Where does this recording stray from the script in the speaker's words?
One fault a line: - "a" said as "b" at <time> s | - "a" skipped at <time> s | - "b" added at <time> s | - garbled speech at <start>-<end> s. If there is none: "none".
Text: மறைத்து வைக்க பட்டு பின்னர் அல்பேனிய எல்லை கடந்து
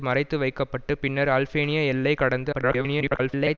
- garbled speech at 2.5-3.6 s